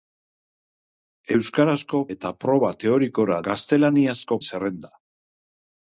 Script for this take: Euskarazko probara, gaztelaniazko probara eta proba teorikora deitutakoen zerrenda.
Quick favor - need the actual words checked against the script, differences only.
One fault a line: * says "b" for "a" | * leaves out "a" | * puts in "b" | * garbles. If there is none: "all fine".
* leaves out "probara gaztelaniazko probara"
* says "gaztelaniazko" for "deitutakoen"